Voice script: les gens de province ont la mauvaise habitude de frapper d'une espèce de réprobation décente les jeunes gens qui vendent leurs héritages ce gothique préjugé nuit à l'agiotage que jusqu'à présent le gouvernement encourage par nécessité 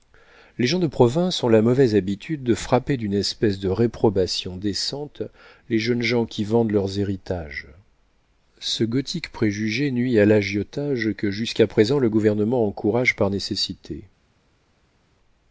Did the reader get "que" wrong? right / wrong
right